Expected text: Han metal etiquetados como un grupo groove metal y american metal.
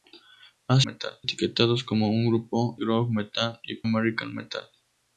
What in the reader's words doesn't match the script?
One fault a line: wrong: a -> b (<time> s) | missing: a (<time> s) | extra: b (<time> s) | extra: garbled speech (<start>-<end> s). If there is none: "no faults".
no faults